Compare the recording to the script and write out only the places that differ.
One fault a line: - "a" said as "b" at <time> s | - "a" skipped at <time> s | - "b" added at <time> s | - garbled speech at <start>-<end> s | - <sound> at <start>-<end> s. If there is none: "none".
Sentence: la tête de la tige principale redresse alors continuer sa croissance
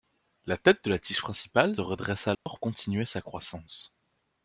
- dropout at 2.3-2.5 s